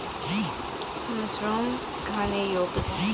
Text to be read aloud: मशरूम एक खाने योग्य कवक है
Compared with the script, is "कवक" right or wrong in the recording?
wrong